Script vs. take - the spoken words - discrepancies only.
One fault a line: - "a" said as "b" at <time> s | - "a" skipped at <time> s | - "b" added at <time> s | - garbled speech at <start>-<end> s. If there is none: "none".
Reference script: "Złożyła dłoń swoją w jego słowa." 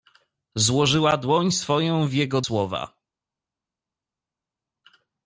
none